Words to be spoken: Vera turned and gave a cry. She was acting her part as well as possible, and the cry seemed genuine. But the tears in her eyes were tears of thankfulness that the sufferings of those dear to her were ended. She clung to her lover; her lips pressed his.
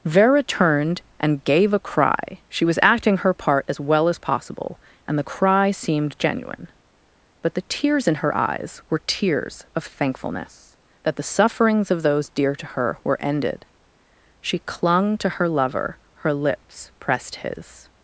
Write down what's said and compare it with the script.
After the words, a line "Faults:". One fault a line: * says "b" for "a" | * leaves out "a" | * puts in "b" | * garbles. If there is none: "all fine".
Vera turned and gave a cry. She was acting her part as well as possible, and the cry seemed genuine. But the tears in her eyes were tears of thankfulness that the sufferings of those dear to her were ended. She clung to her lover; her lips pressed his.
Faults:
all fine